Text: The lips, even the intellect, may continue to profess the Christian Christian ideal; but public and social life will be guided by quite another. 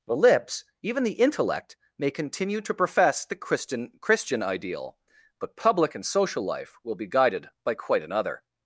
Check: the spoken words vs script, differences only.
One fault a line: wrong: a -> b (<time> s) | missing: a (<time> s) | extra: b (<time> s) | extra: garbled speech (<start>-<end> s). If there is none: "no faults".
no faults